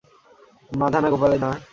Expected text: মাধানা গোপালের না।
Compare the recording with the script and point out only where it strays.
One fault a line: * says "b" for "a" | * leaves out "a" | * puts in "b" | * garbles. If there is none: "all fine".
all fine